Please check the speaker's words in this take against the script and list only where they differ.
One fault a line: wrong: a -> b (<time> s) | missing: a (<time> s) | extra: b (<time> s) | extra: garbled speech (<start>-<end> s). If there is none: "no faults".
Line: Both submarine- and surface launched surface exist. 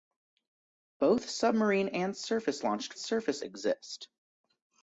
no faults